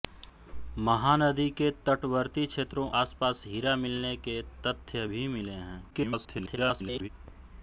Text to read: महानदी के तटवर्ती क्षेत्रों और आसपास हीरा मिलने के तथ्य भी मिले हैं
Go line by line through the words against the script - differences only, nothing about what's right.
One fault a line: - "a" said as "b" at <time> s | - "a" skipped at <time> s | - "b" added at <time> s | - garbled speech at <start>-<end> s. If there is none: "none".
- "और" skipped at 2.9 s
- garbled speech at 5.9-7.1 s